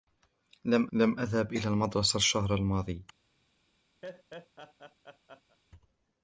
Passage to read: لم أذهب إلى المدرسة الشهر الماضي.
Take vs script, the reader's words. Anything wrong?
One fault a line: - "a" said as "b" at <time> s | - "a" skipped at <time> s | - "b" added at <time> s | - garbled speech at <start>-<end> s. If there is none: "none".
- "لم" added at 0.9 s